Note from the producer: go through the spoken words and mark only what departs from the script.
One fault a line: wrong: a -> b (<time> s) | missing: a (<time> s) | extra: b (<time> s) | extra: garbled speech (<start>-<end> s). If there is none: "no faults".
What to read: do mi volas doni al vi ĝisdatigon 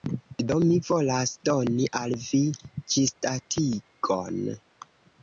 no faults